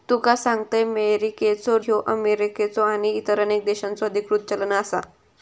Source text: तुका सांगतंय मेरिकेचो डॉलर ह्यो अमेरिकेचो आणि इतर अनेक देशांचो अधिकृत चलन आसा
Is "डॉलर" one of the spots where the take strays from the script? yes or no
yes